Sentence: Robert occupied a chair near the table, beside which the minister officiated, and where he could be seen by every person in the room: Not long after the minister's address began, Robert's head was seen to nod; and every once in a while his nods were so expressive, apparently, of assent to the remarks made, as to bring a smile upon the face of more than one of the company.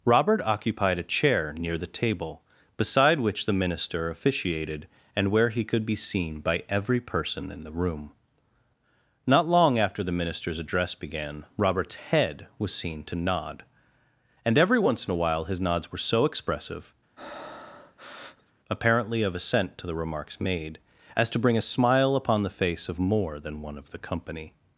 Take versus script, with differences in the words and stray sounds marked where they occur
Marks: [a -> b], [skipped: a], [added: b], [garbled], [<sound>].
Robert occupied a chair near the table, beside which the minister officiated, and where he could be seen by every person in the room: Not long after the minister's address began, Robert's head was seen to nod; and every once in a while his nods were so expressive, [breath] apparently, of assent to the remarks made, as to bring a smile upon the face of more than one of the company.